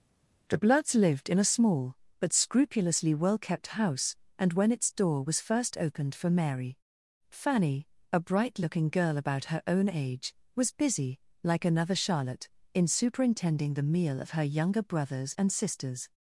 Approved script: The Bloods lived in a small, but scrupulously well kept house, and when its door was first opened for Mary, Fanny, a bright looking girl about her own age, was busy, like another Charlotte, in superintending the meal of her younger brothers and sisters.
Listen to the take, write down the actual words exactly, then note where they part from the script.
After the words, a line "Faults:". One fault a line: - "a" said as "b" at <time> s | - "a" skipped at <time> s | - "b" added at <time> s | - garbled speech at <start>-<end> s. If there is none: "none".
The Bloods lived in a small, but scrupulously well kept house, and when its door was first opened for Mary, Fanny, a bright looking girl about her own age, was busy, like another Charlotte, in superintending the meal of her younger brothers and sisters.
Faults:
none